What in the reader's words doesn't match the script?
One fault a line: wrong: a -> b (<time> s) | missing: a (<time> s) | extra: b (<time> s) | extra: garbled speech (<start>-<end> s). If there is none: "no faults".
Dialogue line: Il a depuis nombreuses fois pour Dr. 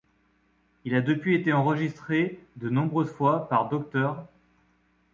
extra: été enregistré de (1.4 s)
wrong: pour -> par (3.5 s)